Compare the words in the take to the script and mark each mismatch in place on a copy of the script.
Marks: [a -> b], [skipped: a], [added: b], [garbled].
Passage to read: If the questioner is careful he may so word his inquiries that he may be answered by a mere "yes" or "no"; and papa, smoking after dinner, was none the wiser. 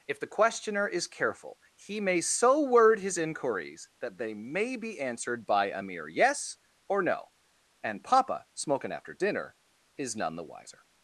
If the questioner is careful he may so word his inquiries that [he -> they] may be answered by a mere "yes" or "no"; and papa, smoking after dinner, [was -> is] none the wiser.